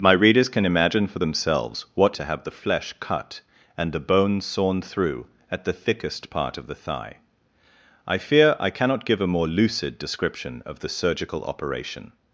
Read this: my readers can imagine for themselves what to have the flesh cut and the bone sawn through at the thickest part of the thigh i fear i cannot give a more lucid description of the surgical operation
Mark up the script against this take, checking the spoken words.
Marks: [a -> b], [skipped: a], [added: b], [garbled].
my readers can imagine for themselves what to have the flesh cut and the bone sawn through at the thickest part of the thigh i fear i cannot give a more lucid description of the surgical operation